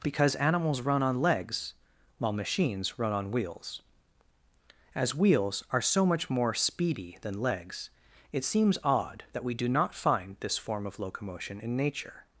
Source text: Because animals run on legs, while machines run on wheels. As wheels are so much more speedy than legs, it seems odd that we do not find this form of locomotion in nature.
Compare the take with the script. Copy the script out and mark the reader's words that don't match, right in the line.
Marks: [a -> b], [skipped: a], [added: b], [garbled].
Because animals run on legs, while machines run on wheels. As wheels are so much more speedy than legs, it seems odd that we do not find this form of locomotion in nature.